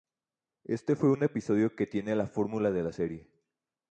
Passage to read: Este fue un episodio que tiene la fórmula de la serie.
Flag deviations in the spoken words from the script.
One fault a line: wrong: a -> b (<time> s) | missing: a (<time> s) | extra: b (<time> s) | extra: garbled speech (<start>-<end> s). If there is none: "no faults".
no faults